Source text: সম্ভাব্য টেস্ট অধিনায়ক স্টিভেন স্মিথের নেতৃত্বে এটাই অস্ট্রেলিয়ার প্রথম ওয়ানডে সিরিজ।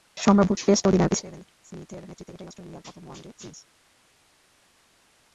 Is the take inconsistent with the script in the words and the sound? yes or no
no